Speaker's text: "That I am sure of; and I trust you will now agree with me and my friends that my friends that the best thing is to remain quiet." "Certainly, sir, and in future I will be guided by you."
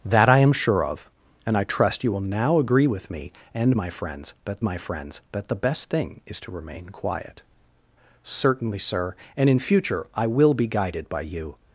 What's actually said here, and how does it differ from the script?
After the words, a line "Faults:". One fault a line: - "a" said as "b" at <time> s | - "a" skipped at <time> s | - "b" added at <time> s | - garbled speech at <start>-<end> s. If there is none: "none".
"That I am sure of; and I trust you will now agree with me and my friends that my friends that the best thing is to remain quiet." "Certainly, sir, and in future I will be guided by you."
Faults:
none